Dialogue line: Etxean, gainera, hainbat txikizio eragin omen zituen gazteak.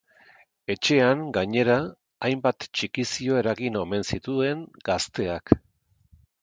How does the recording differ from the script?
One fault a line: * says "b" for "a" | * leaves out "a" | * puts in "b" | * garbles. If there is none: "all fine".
all fine